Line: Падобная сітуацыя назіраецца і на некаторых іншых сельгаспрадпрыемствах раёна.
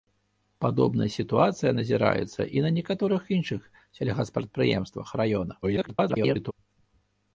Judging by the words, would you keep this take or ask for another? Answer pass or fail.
fail